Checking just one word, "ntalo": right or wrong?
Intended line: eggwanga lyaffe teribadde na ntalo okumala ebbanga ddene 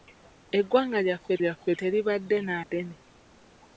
wrong